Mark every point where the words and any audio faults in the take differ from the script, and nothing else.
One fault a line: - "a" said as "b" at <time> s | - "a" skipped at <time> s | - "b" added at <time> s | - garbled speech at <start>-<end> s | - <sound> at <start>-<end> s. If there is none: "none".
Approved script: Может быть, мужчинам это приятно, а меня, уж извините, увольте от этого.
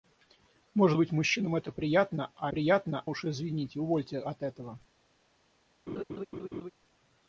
- "меня" said as "приятно" at 2.5 s
- laugh at 5.9-6.7 s